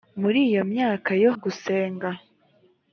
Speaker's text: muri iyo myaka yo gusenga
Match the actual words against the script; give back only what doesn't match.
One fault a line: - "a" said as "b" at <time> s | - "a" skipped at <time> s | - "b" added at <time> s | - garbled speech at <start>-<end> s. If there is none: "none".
none